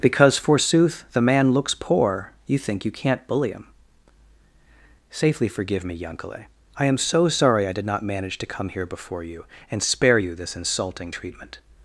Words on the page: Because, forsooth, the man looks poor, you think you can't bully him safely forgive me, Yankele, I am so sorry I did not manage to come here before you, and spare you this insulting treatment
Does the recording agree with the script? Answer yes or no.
yes